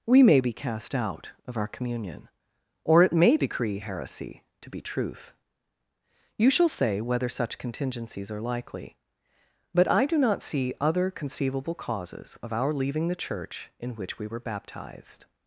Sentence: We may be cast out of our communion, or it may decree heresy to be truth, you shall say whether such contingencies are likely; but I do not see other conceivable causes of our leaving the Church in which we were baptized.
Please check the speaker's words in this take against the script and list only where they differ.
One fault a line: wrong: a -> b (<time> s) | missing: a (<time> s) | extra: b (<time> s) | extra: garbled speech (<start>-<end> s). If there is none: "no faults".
no faults